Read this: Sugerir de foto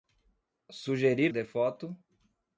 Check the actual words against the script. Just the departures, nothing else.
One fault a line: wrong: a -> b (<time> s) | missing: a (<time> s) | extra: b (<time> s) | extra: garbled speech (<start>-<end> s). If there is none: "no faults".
no faults